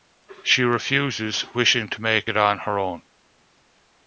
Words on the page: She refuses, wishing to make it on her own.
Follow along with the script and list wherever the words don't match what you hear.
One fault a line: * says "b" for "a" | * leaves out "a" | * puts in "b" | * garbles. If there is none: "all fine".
all fine